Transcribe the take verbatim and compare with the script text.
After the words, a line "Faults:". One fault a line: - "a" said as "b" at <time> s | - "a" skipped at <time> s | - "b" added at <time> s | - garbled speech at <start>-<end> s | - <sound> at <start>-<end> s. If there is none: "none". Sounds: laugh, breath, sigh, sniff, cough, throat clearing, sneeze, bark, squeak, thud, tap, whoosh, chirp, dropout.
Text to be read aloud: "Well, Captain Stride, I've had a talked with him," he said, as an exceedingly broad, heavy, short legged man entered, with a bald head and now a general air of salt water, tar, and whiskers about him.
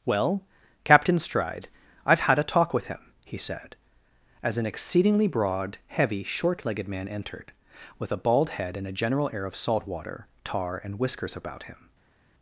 "Well, Captain Stride, I've had a talk with him," he said, as an exceedingly broad, heavy, short legged man entered, with a bald head and a general air of salt water, tar, and whiskers about him.
Faults:
- "talked" said as "talk" at 2.4 s
- "now" skipped at 8.9 s